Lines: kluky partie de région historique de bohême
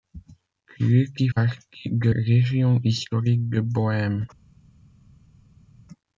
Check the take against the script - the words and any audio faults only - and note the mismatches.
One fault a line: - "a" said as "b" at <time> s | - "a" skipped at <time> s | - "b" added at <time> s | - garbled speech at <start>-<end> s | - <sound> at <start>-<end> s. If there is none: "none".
none